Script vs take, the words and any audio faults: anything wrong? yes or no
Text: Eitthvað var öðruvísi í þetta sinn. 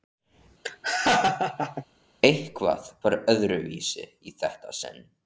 yes